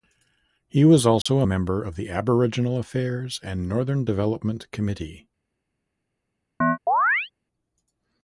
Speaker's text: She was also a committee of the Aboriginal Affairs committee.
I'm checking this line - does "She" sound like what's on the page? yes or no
no